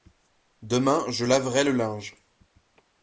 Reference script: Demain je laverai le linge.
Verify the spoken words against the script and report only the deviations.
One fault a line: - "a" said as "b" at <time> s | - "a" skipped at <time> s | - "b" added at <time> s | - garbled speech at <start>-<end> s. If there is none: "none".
none